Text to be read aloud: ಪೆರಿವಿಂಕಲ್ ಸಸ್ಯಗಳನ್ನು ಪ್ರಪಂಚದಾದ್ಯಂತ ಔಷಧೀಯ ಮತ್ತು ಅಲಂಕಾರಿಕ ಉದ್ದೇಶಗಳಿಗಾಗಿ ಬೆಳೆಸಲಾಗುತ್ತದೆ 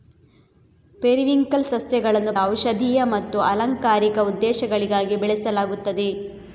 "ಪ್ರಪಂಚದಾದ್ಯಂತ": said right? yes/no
no